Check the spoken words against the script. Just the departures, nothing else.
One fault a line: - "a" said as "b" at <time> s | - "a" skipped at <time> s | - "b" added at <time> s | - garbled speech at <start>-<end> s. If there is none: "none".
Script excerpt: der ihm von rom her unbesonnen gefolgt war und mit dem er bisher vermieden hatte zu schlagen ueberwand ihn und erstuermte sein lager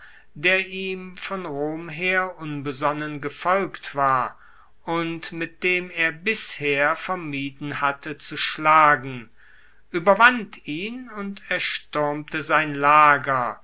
none